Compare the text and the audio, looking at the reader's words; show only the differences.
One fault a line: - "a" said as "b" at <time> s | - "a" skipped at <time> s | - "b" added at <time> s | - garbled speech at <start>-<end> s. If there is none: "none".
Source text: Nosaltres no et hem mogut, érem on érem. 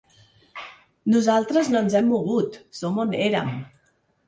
- "et" said as "ens" at 1.8 s
- "érem" said as "som" at 2.8 s